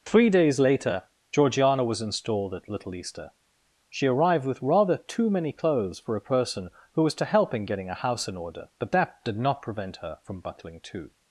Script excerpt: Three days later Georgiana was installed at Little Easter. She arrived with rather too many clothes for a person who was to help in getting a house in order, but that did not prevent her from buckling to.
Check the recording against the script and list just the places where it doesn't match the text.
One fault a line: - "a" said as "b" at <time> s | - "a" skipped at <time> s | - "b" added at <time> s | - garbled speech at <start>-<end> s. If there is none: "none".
none